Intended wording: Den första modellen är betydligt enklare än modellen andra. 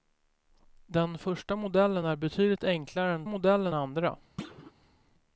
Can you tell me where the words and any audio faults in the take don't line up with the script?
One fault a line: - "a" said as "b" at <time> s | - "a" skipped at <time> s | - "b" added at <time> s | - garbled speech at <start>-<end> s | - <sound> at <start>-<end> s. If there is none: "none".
- thud at 4.4-4.7 s